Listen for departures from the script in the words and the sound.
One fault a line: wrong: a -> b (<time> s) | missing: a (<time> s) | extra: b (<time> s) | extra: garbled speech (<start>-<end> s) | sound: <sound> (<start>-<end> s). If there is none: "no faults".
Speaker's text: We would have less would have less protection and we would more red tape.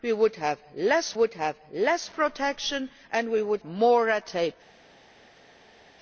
no faults